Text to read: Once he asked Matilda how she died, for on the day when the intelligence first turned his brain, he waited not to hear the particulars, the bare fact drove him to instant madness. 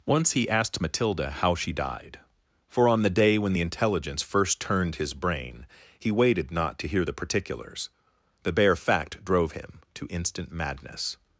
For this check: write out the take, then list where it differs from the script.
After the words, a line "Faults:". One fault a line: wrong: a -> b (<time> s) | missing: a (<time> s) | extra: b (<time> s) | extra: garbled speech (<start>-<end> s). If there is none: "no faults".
Once he asked Matilda how she died, for on the day when the intelligence first turned his brain, he waited not to hear the particulars, the bare fact drove him to instant madness.
Faults:
no faults